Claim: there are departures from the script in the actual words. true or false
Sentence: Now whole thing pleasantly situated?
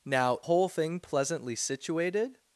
false